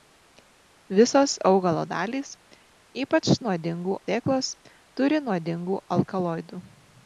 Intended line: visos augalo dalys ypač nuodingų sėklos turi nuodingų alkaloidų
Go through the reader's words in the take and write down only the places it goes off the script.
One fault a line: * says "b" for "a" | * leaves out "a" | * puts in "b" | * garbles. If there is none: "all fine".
all fine